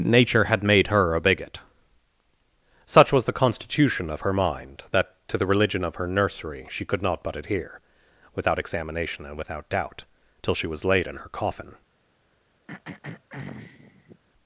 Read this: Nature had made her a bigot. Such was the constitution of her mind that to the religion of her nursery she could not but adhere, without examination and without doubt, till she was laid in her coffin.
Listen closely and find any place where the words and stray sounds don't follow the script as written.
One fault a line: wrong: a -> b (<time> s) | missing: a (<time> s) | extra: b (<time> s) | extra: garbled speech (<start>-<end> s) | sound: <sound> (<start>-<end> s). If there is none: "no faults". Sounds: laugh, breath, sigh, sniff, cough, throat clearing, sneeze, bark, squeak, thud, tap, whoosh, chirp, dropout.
sound: throat clearing (12.7-14.2 s)